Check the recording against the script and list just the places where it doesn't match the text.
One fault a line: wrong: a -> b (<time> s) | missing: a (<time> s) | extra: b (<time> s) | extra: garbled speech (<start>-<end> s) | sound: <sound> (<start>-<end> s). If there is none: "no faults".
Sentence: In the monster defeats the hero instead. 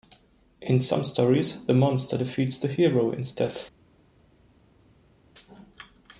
extra: some stories (0.8 s)